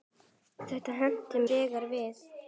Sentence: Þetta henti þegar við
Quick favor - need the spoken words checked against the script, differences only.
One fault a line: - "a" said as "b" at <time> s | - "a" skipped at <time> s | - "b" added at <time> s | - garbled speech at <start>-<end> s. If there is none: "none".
none